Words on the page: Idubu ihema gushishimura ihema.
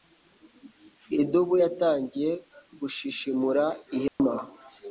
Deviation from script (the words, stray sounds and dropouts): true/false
true